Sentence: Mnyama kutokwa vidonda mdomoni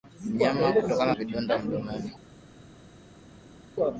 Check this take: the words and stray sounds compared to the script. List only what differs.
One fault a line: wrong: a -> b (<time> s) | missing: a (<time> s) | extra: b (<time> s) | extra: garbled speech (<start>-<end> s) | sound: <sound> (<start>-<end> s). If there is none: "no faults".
no faults